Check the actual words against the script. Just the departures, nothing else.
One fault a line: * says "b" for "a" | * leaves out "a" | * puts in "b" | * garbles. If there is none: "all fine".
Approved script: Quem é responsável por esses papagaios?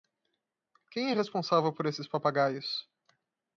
all fine